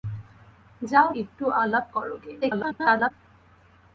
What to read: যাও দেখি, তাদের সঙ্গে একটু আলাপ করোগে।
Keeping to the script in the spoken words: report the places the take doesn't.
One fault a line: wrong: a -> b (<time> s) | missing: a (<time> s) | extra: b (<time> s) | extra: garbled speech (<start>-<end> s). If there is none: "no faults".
missing: দেখি তাদের সঙ্গে (1.1 s)
extra: garbled speech (2.4-3.1 s)